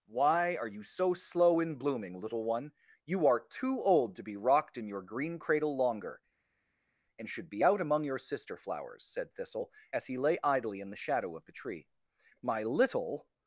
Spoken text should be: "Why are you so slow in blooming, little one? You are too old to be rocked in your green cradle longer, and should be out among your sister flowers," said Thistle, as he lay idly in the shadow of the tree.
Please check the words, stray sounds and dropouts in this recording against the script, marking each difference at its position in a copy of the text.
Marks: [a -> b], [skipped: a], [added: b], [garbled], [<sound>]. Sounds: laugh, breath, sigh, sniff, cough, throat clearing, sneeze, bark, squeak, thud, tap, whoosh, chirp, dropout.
"Why are you so slow in blooming, little one? You are too old to be rocked in your green cradle longer, and should be out among your sister flowers," said Thistle, as he lay idly in the shadow of the tree. [added: My little]